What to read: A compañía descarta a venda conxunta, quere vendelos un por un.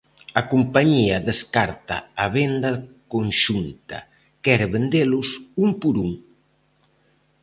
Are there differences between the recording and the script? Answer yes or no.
no